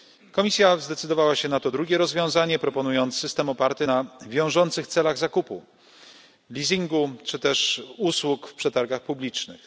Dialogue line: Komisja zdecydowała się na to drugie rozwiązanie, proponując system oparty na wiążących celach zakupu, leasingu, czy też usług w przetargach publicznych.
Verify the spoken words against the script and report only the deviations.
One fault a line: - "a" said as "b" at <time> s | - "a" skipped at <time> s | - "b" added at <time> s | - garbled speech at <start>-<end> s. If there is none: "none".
none